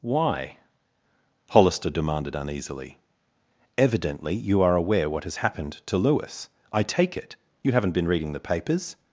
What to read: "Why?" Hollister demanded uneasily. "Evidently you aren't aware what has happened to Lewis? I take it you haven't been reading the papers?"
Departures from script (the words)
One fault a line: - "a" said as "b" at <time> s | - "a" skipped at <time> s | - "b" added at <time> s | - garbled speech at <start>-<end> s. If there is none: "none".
- "aren't" said as "are" at 4.6 s